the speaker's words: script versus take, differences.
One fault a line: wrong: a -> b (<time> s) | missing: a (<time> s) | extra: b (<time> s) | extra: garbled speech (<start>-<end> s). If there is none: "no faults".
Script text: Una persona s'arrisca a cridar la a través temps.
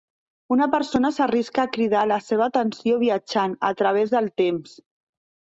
extra: seva atenció viatjant (2.3 s)
extra: del (4.2 s)